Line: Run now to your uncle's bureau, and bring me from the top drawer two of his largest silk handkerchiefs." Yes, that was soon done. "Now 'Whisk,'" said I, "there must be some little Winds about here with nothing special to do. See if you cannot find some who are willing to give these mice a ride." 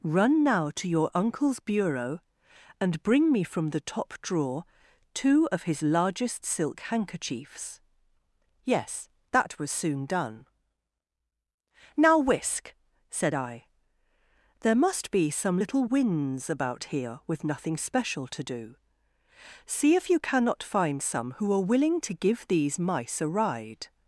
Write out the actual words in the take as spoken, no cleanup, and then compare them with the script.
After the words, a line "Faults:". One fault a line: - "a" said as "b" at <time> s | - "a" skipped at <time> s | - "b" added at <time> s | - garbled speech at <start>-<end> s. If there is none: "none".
Run now to your uncle's bureau, and bring me from the top drawer two of his largest silk handkerchiefs." Yes, that was soon done. "Now 'Whisk,'" said I, "there must be some little Winds about here with nothing special to do. See if you cannot find some who are willing to give these mice a ride."
Faults:
none